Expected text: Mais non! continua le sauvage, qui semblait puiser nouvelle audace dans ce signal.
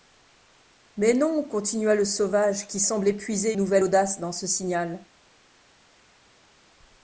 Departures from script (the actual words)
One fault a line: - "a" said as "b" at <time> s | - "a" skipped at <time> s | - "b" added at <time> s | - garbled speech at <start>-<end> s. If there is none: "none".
none